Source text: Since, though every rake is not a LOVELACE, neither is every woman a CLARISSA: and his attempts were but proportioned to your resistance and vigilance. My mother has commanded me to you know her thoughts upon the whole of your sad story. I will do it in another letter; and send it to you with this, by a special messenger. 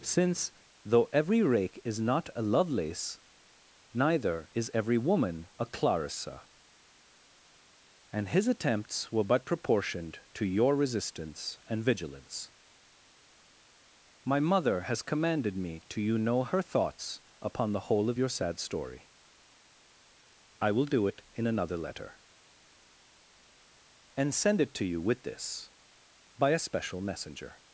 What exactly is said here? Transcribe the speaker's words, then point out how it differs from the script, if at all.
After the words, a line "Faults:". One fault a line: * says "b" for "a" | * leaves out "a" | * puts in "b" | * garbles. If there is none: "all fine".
Since, though every rake is not a LOVELACE, neither is every woman a CLARISSA: and his attempts were but proportioned to your resistance and vigilance. My mother has commanded me to you know her thoughts upon the whole of your sad story. I will do it in another letter; and send it to you with this, by a special messenger.
Faults:
all fine